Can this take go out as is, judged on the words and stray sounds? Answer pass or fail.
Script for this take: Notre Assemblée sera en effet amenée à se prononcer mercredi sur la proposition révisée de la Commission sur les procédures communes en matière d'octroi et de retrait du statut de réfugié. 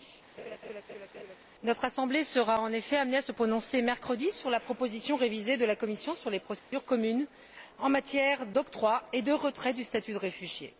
fail